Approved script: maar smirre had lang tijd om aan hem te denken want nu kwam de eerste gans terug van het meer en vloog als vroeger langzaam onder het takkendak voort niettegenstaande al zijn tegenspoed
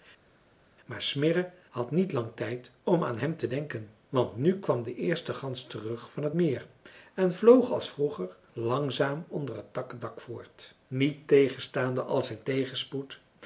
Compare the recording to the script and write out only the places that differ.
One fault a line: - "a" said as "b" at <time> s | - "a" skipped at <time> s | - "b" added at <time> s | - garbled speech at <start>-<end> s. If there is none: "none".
- "niet" added at 1.9 s